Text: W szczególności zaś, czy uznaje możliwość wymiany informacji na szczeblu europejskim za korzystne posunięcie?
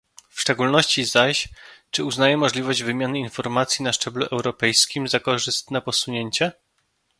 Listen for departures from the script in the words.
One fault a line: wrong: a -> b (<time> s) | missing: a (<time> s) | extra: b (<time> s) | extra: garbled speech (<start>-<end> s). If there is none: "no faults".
no faults